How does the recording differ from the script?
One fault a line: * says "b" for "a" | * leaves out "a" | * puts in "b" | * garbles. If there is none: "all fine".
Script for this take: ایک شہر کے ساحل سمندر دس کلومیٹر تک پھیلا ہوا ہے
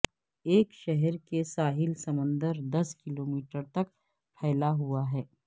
all fine